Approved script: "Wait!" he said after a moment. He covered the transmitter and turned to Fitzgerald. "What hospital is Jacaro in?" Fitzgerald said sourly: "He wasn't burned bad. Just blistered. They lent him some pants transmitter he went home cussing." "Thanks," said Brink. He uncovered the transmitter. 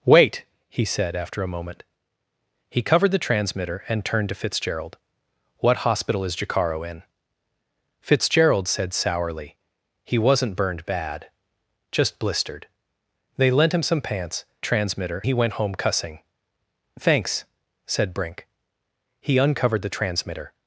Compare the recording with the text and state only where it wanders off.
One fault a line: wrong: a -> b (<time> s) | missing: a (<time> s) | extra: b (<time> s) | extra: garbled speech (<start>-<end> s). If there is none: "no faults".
no faults